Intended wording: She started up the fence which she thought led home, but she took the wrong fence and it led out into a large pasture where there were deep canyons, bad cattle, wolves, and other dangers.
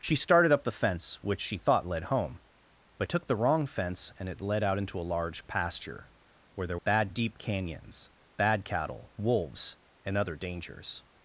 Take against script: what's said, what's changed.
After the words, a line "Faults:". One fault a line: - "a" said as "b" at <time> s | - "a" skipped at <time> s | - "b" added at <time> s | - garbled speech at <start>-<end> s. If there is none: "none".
She started up the fence which she thought led home, but took the wrong fence and it led out into a large pasture where there bad deep canyons, bad cattle, wolves, and other dangers.
Faults:
- "she" skipped at 3.1 s
- "were" said as "bad" at 6.8 s